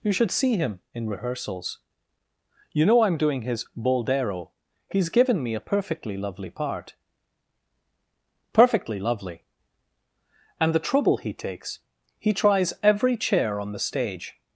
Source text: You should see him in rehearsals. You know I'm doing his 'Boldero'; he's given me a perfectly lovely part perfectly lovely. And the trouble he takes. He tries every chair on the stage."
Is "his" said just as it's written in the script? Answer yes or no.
yes